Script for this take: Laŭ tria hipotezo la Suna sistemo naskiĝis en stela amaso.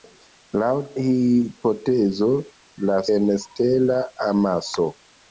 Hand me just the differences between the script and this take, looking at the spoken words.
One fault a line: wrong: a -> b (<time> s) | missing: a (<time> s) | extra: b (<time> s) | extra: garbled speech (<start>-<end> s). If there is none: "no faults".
missing: tria (0.7 s)
missing: Suna sistemo naskiĝis (3.0 s)